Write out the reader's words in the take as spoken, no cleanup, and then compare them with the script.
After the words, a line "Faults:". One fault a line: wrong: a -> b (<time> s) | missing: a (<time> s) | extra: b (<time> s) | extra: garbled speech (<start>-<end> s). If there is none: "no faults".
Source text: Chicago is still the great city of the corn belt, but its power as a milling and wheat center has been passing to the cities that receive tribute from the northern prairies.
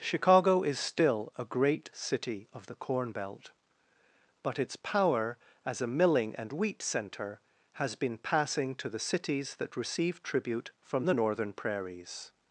Chicago is still a great city of the corn belt, but its power as a milling and wheat center has been passing to the cities that receive tribute from the northern prairies.
Faults:
wrong: the -> a (1.4 s)